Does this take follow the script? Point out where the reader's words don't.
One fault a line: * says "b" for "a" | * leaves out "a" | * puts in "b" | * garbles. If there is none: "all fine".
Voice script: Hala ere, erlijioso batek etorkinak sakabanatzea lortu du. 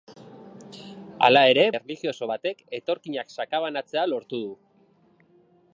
all fine